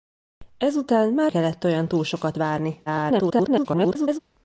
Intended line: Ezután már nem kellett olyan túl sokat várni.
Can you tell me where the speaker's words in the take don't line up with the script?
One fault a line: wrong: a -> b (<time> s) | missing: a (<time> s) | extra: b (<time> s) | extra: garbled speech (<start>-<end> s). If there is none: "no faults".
missing: nem (1.3 s)
extra: garbled speech (2.9-4.2 s)